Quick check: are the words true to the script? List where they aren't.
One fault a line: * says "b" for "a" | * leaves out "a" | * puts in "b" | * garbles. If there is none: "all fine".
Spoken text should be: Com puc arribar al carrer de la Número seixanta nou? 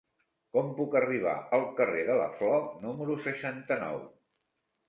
* puts in "Flor"